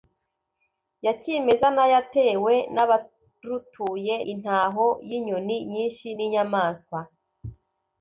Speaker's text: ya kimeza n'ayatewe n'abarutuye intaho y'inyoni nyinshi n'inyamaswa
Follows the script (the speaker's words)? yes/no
yes